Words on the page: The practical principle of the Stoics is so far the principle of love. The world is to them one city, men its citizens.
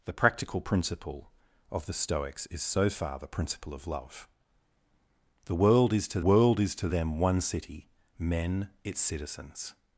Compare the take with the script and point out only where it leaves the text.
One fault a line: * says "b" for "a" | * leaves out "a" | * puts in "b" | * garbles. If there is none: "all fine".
* puts in "world is to"